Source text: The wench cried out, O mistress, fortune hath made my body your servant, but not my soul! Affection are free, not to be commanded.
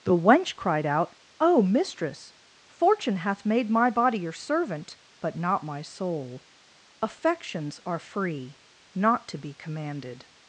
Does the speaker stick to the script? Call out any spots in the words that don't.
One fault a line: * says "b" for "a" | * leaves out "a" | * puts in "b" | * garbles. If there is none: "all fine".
* says "Affections" for "Affection"